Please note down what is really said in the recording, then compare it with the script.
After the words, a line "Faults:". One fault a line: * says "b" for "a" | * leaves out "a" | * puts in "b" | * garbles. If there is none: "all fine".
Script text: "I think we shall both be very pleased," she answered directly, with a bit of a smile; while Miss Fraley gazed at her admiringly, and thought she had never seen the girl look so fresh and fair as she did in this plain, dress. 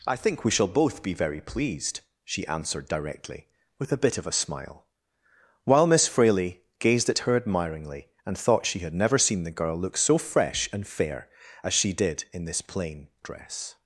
"I think we shall both be very pleased," she answered directly, with a bit of a smile; while Miss Fraley gazed at her admiringly, and thought she had never seen the girl look so fresh and fair as she did in this plain, dress.
Faults:
all fine